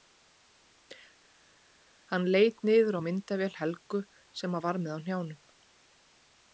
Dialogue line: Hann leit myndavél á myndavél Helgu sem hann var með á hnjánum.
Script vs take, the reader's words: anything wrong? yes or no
yes